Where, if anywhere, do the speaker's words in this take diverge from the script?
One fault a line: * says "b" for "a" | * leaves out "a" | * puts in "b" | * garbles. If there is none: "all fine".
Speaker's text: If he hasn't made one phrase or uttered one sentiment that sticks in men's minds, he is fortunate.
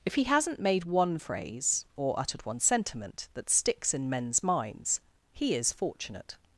all fine